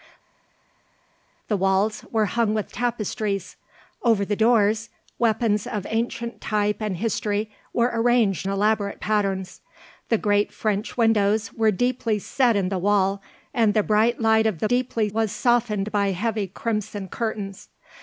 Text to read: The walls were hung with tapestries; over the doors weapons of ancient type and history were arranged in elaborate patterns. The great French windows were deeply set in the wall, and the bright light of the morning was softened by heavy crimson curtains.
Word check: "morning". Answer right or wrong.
wrong